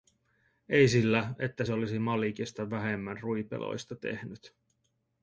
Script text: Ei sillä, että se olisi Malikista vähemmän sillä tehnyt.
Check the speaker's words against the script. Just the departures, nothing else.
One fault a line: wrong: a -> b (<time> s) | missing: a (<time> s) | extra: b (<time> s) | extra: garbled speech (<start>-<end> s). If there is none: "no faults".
wrong: sillä -> ruipeloista (3.2 s)